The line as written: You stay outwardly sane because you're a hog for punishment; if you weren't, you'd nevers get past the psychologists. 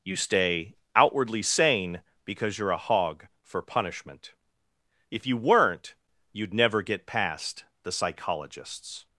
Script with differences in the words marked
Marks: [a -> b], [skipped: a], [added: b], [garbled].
You stay outwardly sane because you're a hog for punishment; if you weren't, you'd [nevers -> never] get past the psychologists.